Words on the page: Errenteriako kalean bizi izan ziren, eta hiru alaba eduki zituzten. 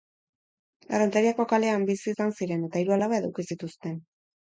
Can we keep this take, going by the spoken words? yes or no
yes